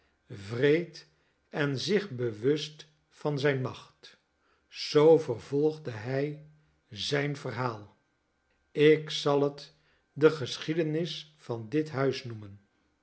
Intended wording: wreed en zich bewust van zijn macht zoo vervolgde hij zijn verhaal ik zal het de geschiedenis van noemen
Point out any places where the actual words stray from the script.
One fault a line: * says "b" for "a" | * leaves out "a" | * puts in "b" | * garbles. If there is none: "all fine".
* puts in "dit huis"